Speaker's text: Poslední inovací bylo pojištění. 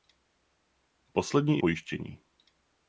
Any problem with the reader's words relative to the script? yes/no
yes